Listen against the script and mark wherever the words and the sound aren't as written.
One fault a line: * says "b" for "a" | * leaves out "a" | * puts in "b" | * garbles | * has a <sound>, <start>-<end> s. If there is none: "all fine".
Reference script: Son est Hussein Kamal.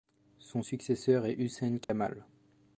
* puts in "successeur"
* has a dropout, 1.8-1.9 s